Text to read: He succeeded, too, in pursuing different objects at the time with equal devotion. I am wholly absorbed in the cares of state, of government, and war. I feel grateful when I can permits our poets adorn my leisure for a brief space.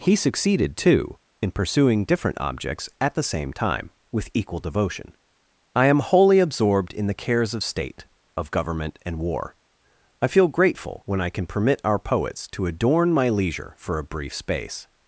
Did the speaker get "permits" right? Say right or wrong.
wrong